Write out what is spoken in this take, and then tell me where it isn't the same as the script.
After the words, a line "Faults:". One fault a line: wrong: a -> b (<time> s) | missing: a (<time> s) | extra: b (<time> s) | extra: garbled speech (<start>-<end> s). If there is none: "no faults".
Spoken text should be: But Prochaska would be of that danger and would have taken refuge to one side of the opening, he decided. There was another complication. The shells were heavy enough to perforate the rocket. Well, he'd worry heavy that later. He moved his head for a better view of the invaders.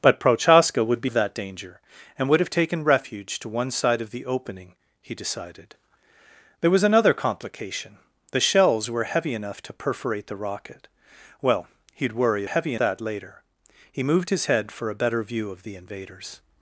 But Prochaska would be of that danger and would have taken refuge to one side of the opening, he decided. There was another complication. The shells were heavy enough to perforate the rocket. Well, he'd worry heavy that later. He moved his head for a better view of the invaders.
Faults:
no faults